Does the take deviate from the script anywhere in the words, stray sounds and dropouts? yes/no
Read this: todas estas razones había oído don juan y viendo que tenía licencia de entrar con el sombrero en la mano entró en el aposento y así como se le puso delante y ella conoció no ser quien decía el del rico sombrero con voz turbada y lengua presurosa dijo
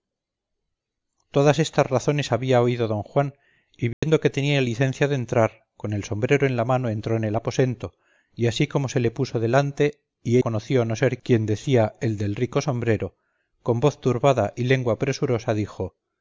yes